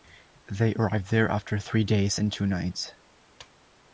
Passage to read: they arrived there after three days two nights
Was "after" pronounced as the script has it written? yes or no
yes